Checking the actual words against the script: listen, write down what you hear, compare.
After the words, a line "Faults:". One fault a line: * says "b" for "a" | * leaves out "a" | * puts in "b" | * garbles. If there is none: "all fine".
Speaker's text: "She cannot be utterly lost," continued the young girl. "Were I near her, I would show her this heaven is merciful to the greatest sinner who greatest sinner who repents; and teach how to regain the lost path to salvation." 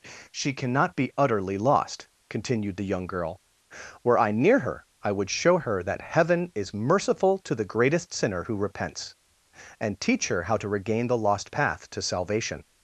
"She cannot be utterly lost," continued the young girl. "Were I near her, I would show her that heaven is merciful to the greatest sinner who repents; and teach her how to regain the lost path to salvation."
Faults:
* says "that" for "this"
* leaves out "greatest sinner who"
* puts in "her"